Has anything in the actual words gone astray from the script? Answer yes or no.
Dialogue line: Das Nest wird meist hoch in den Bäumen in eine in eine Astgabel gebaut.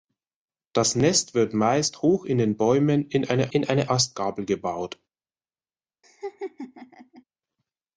no